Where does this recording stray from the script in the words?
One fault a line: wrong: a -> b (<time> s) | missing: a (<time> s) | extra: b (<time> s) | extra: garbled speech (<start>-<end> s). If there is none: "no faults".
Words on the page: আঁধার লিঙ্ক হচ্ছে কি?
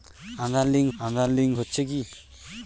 extra: আঁধার লিঙ্ক (1.0 s)